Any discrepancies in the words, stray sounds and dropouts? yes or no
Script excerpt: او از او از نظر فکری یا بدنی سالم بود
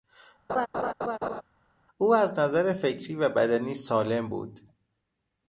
yes